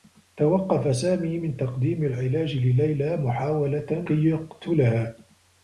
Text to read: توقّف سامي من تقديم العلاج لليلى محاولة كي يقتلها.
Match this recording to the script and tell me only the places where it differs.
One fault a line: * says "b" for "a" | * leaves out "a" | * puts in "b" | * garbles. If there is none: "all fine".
all fine